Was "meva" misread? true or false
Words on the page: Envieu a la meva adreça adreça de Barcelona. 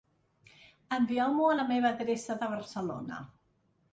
false